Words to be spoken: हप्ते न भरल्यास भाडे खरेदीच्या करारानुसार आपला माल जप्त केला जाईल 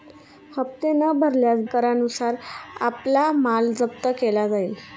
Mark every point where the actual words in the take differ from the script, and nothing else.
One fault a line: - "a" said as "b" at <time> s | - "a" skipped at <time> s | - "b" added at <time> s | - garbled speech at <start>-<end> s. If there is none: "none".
- "भाडे खरेदीच्या" skipped at 1.6 s